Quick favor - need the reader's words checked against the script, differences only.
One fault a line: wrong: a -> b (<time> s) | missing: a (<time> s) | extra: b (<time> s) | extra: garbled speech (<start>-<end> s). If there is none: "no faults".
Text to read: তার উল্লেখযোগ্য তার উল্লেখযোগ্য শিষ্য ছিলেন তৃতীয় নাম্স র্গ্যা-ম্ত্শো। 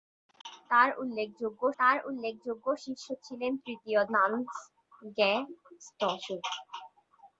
no faults